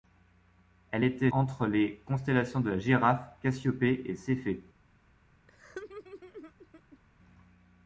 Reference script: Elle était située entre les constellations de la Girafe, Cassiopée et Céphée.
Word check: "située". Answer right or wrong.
wrong